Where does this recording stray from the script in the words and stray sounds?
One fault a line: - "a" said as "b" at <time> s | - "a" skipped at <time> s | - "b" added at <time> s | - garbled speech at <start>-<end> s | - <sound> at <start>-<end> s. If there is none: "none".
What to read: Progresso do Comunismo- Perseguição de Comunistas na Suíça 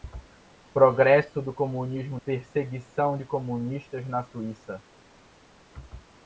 none